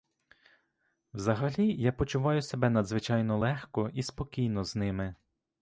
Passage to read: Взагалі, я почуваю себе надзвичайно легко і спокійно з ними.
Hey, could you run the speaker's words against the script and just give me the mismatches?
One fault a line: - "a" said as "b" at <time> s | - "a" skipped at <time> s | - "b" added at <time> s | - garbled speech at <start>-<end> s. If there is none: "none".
none